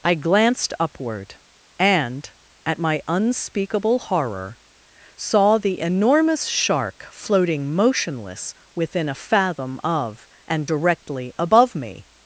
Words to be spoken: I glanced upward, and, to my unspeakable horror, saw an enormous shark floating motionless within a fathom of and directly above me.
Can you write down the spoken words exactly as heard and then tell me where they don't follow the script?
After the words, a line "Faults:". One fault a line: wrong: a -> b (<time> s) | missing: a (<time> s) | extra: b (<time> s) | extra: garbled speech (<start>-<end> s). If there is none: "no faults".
I glanced upward, and, at my unspeakable horror, saw the enormous shark floating motionless within a fathom of and directly above me.
Faults:
wrong: to -> at (2.6 s)
wrong: an -> the (5.6 s)